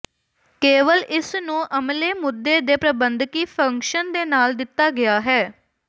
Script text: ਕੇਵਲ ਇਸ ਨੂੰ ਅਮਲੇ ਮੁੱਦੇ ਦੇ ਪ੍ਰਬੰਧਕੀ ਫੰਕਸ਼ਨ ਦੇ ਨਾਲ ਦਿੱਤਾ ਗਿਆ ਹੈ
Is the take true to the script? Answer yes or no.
yes